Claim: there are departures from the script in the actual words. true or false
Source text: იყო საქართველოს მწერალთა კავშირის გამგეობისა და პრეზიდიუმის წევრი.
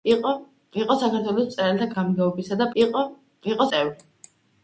true